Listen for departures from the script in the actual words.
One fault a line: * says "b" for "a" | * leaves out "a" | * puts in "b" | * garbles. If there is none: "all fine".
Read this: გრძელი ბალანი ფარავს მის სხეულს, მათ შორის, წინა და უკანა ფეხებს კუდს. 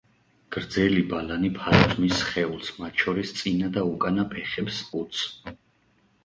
all fine